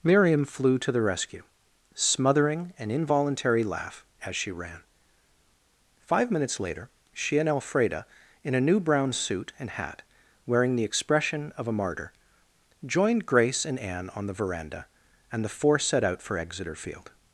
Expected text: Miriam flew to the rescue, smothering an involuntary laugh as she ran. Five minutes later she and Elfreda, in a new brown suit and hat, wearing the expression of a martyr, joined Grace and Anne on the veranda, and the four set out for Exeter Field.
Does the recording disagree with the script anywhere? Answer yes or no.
no